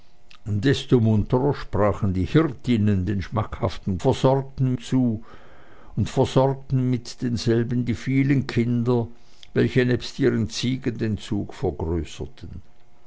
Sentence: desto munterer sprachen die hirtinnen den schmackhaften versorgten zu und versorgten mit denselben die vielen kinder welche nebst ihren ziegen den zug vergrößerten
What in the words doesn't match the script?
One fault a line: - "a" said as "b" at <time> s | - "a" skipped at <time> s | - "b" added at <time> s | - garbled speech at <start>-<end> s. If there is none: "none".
none